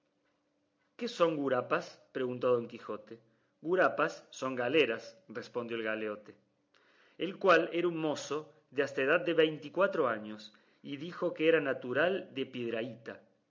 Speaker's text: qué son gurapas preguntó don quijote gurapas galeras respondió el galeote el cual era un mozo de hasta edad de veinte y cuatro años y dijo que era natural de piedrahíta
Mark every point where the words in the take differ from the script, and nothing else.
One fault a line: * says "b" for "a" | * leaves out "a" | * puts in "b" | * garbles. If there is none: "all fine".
* puts in "son"